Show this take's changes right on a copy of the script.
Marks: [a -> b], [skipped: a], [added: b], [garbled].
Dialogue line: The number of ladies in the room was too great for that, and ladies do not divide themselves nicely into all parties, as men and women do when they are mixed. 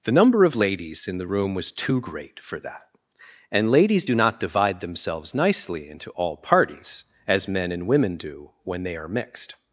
The number of ladies in the room was too great for that, and ladies do not divide themselves nicely into all parties, as men and women do when they are mixed.